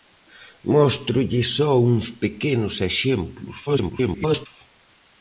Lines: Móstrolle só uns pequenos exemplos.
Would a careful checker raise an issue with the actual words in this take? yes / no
yes